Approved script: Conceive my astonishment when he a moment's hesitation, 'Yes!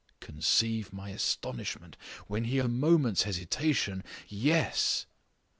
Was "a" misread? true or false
false